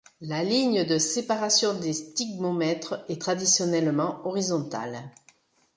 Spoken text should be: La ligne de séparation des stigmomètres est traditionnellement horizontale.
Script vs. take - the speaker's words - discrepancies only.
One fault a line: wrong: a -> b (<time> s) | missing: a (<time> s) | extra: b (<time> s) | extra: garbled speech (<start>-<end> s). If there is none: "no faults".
no faults